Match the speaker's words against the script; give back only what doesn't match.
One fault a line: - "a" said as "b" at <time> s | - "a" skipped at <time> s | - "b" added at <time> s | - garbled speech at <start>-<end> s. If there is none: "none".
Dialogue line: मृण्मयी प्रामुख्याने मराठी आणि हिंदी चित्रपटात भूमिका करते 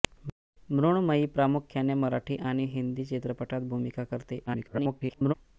- garbled speech at 4.5-5.3 s